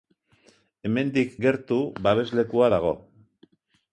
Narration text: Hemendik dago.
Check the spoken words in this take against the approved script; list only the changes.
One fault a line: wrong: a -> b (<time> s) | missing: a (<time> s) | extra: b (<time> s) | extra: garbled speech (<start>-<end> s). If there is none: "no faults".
extra: gertu babeslekua (1.5 s)